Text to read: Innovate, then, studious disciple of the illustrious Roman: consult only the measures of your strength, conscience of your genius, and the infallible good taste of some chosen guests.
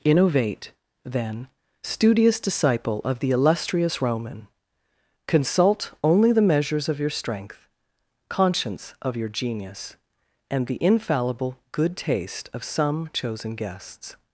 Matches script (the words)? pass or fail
pass